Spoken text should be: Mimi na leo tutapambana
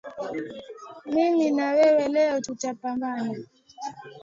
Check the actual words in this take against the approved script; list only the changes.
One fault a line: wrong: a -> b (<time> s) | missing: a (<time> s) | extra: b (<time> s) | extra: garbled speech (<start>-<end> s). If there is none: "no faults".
extra: wewe (1.7 s)